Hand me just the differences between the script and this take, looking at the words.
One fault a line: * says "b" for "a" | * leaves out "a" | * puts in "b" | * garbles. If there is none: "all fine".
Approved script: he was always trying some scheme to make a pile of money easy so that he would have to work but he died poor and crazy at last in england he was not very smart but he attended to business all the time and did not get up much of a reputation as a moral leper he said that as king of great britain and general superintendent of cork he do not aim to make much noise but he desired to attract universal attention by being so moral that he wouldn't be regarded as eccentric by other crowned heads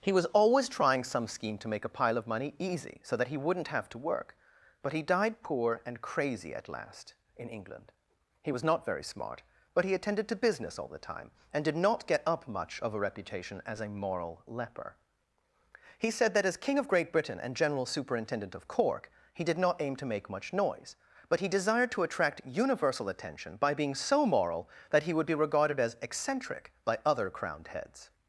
* says "wouldn't" for "would"
* says "did" for "do"
* says "would" for "wouldn't"